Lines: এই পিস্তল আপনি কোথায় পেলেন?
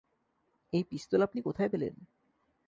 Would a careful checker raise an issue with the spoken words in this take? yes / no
no